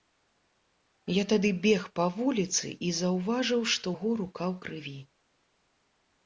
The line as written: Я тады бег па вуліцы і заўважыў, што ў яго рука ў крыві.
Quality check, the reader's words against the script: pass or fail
fail